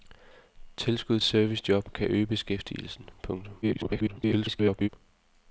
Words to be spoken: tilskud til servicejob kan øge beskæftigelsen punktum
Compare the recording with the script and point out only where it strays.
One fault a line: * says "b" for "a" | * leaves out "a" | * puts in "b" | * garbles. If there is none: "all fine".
* leaves out "til"
* garbles